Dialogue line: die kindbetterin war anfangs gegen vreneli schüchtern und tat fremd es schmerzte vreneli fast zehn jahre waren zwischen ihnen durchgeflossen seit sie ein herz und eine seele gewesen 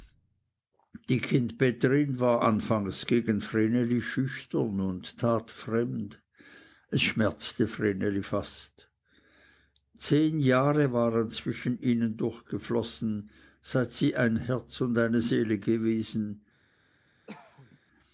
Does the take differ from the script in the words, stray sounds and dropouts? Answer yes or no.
yes